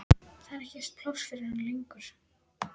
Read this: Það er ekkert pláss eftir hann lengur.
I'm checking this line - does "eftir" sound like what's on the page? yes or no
no